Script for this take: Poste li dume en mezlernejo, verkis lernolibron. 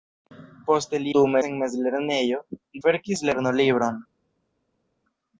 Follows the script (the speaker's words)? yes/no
yes